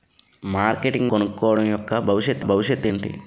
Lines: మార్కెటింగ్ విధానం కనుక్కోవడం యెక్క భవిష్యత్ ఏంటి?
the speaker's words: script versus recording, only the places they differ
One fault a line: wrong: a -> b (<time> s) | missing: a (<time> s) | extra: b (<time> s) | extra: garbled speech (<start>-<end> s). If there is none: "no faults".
missing: విధానం (1.1 s)
extra: భవిష్యత్ (2.4 s)